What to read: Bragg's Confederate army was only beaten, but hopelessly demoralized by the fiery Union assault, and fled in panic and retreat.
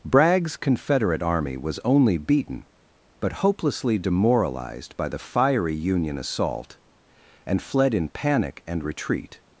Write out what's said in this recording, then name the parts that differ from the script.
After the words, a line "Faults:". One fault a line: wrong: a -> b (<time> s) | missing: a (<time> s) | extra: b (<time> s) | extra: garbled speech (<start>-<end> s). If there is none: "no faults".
Bragg's Confederate army was only beaten, but hopelessly demoralized by the fiery Union assault, and fled in panic and retreat.
Faults:
no faults